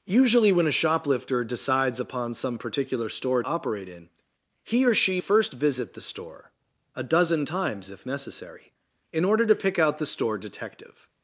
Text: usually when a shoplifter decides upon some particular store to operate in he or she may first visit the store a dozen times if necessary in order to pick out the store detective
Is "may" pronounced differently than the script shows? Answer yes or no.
yes